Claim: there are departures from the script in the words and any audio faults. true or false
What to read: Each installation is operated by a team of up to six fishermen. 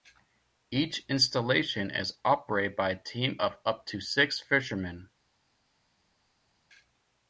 false